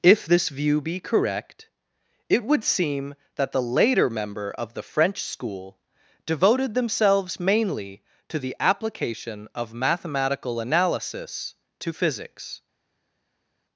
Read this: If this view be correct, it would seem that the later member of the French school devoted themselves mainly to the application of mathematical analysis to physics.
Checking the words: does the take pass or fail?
pass